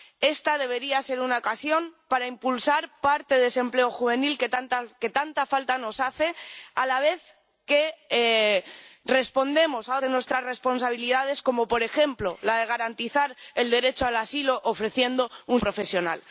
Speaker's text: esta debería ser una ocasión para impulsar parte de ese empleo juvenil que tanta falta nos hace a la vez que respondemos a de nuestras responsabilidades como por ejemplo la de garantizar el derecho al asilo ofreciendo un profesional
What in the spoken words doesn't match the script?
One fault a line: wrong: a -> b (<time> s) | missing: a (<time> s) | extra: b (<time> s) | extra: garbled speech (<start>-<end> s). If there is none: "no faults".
no faults